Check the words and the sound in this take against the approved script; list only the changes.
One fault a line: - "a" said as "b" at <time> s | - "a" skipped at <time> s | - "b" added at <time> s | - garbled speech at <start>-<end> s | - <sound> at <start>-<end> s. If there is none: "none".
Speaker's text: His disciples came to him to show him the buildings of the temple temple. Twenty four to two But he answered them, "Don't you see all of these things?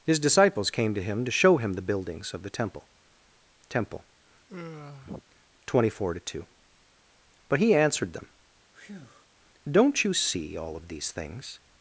- sigh at 4.5-5.2 s
- breath at 8.7-9.3 s